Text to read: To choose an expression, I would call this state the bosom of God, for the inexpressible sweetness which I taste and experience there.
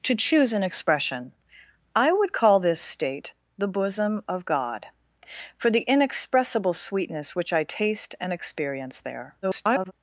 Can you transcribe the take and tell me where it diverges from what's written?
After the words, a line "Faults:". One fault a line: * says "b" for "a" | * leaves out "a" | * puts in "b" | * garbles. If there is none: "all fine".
To choose an expression, I would call this state the bosom of God, for the inexpressible sweetness which I taste and experience there. [garbled]
Faults:
* garbles